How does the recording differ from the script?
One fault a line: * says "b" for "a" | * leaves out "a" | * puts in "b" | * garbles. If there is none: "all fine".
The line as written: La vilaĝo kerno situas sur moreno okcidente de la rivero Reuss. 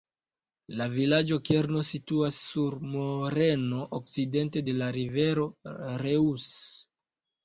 all fine